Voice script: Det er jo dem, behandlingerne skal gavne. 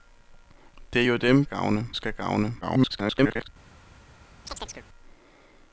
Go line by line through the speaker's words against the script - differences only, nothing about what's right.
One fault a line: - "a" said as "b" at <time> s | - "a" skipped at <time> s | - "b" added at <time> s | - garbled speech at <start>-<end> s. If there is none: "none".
- "behandlingerne" said as "gavne" at 1.4 s
- garbled speech at 2.6-3.5 s